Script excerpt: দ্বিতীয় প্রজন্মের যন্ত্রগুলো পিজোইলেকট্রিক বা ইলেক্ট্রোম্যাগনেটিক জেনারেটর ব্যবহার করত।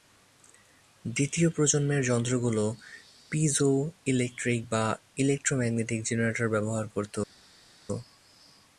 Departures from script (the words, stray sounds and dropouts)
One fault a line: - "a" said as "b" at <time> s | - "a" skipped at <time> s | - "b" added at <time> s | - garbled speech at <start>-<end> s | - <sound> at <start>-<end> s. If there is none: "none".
none